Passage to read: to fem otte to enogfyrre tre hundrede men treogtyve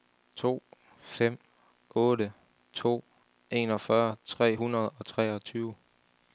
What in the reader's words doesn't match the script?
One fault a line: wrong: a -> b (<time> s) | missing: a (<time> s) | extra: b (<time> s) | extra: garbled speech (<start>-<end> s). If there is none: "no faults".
wrong: men -> og (4.9 s)